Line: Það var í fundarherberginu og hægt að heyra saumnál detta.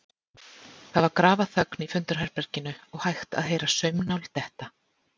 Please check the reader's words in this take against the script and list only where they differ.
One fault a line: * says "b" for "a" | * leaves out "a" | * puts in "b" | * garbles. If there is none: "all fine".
* puts in "grafarþögn"